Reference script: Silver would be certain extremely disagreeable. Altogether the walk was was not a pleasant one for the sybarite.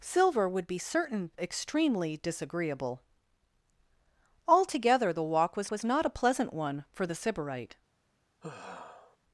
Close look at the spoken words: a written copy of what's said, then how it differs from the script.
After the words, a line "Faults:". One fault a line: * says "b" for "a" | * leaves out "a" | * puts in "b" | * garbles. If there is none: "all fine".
Silver would be certain extremely disagreeable. Altogether the walk was was not a pleasant one for the sybarite.
Faults:
all fine